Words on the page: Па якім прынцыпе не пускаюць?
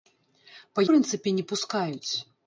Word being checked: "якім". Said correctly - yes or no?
no